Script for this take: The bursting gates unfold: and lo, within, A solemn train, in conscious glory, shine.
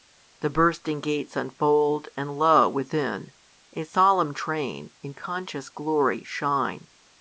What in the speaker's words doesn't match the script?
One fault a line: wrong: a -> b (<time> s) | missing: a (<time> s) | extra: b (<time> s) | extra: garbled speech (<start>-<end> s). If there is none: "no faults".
no faults